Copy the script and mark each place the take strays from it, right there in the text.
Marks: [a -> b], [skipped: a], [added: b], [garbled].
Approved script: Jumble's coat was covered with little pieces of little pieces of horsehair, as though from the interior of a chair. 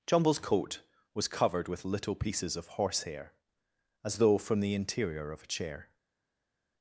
Jumble's coat was covered with little pieces of [skipped: little pieces of] horsehair, as though from the interior of a chair.